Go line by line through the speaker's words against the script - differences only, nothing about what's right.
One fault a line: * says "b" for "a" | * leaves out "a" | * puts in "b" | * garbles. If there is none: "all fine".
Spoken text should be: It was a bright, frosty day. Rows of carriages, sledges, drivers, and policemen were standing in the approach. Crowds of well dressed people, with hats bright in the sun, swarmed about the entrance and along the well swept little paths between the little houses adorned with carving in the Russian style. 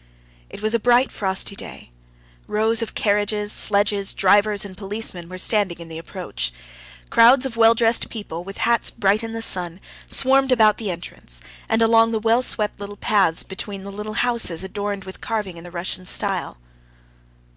all fine